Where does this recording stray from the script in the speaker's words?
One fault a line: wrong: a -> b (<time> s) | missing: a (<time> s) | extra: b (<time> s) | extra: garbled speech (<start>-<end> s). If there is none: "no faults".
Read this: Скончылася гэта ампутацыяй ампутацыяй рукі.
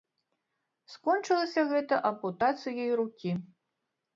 missing: ампутацыяй (2.9 s)